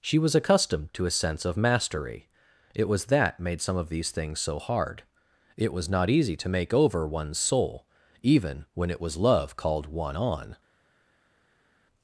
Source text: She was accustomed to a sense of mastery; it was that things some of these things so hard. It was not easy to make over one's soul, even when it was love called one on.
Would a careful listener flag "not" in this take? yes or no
no